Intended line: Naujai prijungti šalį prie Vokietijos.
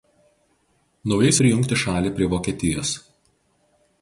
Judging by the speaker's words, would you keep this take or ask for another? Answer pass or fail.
pass